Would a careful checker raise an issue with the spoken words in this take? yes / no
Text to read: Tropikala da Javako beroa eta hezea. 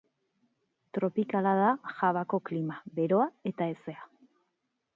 yes